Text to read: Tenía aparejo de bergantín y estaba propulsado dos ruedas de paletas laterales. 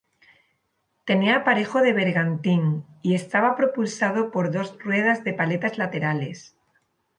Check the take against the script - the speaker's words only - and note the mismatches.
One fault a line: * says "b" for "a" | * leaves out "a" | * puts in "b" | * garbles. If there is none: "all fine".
* puts in "por"